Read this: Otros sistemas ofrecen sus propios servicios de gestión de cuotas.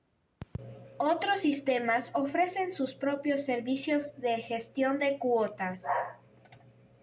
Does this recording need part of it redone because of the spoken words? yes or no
no